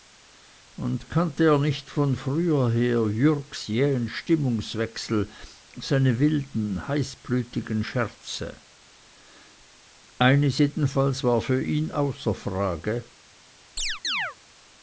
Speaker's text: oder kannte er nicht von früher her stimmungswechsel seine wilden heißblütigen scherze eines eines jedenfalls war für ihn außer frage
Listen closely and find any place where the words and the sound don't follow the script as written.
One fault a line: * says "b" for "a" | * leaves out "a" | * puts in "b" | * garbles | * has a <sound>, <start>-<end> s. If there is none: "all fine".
* says "und" for "oder"
* puts in "jürgs jähen"
* leaves out "eines"
* has a chirp, 13.8-14.4 s